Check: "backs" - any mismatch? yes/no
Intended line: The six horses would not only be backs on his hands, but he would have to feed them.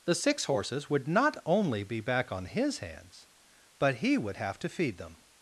yes